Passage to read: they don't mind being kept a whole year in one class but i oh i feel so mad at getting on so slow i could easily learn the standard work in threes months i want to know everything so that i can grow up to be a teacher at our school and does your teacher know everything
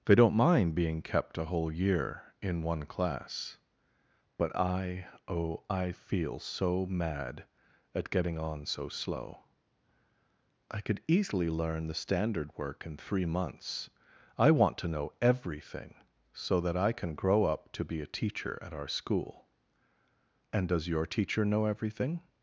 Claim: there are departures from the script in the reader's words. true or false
true